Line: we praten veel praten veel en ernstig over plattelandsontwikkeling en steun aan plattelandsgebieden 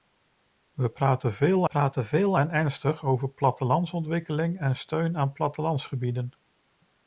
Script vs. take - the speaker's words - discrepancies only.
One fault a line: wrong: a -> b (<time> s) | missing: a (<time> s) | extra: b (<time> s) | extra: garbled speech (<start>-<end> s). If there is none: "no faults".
no faults